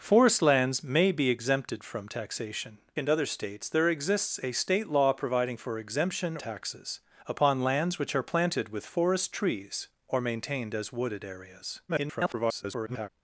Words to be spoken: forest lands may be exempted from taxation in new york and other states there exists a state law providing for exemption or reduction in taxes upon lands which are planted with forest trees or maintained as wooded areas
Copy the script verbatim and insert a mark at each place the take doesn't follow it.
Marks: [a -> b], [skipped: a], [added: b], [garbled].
forest lands may be exempted from taxation [skipped: in new york] and other states there exists a state law providing for exemption [skipped: or reduction in] taxes upon lands which are planted with forest trees or maintained as wooded areas [garbled]